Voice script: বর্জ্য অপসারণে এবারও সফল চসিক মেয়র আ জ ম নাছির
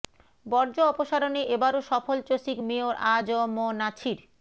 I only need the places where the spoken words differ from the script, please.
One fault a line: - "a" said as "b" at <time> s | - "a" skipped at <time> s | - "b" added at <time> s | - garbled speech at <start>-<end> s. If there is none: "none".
none